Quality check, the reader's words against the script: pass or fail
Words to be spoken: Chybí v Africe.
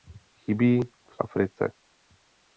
pass